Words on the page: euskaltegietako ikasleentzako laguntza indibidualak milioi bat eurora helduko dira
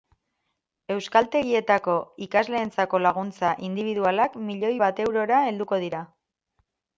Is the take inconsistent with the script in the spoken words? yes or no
no